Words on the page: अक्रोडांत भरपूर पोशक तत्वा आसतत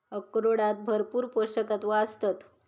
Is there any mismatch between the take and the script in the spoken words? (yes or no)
no